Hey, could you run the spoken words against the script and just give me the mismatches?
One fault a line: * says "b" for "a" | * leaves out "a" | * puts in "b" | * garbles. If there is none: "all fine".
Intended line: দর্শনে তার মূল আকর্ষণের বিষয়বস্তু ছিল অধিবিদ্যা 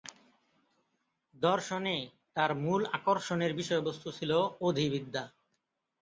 all fine